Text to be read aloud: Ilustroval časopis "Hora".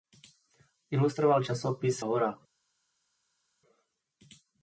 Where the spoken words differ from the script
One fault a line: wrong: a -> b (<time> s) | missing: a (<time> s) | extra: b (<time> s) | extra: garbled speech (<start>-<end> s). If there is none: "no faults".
no faults